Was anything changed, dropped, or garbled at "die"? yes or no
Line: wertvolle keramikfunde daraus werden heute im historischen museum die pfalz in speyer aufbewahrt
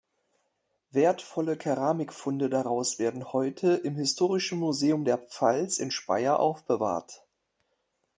yes